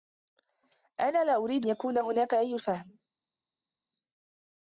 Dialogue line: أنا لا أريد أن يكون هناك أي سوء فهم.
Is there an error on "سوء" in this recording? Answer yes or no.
yes